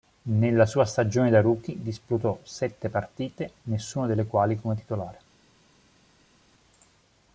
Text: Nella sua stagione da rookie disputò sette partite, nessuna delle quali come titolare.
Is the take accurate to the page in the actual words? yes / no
yes